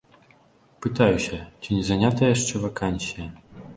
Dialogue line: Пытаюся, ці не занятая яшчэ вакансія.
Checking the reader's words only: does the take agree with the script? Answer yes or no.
yes